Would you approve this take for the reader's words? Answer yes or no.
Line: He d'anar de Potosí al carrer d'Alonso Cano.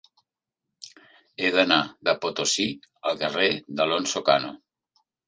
yes